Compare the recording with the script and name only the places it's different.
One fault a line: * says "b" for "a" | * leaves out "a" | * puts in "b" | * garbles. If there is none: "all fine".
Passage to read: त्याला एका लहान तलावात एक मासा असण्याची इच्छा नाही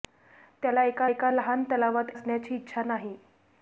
* puts in "एका"
* leaves out "एक मासा"